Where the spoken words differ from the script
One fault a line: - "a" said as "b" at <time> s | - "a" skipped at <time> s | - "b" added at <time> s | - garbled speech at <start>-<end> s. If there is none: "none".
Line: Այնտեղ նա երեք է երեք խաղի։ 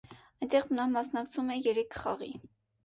- "երեք" said as "մասնակցում" at 0.9 s